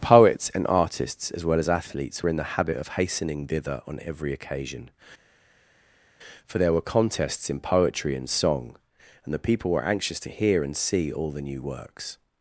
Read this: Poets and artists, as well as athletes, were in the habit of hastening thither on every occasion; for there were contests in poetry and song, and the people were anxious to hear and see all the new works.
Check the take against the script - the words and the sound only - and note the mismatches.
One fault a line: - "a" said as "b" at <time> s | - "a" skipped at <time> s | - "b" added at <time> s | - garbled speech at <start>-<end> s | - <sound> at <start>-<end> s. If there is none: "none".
none